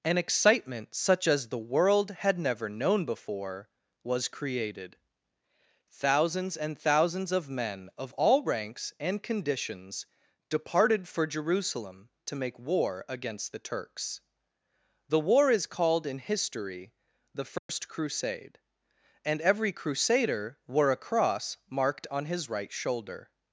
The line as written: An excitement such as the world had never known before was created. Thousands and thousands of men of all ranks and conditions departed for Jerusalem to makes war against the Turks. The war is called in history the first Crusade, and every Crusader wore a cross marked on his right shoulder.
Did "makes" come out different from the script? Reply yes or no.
yes